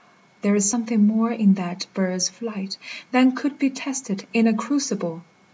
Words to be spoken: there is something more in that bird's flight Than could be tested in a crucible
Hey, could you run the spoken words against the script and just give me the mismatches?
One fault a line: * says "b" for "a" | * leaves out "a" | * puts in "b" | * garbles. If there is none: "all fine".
all fine